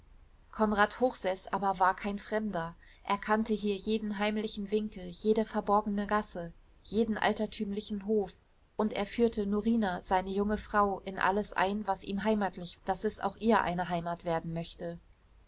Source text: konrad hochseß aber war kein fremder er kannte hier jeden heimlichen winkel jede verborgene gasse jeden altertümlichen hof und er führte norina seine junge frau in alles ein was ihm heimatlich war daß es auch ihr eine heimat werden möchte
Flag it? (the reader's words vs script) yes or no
yes